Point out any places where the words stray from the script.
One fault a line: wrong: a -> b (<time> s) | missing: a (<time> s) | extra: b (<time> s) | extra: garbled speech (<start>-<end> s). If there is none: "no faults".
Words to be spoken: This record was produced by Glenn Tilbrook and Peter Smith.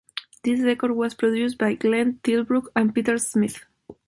no faults